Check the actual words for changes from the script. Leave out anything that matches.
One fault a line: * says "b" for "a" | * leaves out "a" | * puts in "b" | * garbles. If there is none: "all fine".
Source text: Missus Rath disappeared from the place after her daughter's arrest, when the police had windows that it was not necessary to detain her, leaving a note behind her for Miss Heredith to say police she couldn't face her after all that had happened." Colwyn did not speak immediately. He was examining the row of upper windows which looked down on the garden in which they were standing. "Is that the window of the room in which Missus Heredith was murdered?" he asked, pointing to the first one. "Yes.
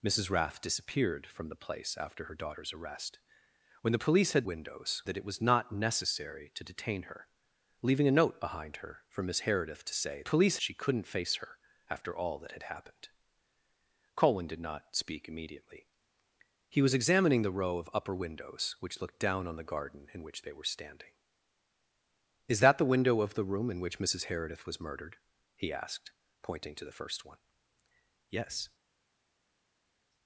all fine